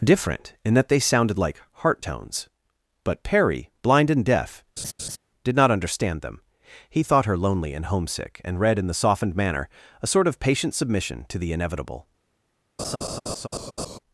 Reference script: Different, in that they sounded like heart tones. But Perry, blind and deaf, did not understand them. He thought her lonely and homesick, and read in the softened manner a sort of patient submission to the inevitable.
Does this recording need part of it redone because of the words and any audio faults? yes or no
yes